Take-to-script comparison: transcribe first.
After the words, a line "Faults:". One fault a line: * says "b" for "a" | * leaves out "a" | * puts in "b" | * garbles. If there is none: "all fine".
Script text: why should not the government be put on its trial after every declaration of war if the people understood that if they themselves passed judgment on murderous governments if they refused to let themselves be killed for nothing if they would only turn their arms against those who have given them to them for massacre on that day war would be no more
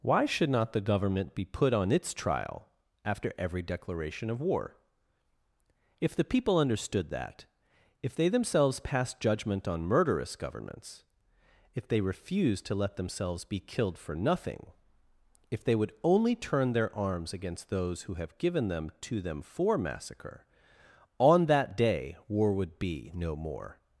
why should not the government be put on its trial after every declaration of war if the people understood that if they themselves passed judgment on murderous governments if they refused to let themselves be killed for nothing if they would only turn their arms against those who have given them to them for massacre on that day war would be no more
Faults:
all fine